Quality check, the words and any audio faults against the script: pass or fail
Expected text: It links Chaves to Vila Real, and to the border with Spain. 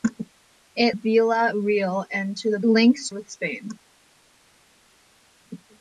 fail